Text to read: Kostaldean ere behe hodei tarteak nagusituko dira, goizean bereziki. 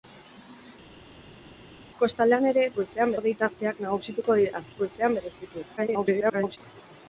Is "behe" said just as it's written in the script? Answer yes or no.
no